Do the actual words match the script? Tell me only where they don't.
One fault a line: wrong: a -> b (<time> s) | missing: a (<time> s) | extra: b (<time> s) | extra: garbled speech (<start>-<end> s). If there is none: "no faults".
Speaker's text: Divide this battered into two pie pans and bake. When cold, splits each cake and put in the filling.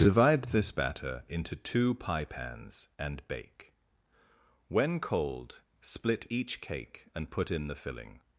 wrong: battered -> batter (0.7 s)
wrong: splits -> split (5.8 s)